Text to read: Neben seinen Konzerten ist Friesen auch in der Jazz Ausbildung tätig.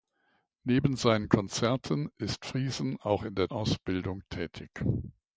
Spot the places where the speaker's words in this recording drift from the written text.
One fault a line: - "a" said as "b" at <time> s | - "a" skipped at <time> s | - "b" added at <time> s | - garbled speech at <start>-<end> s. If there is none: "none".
- "Jazz" skipped at 3.5 s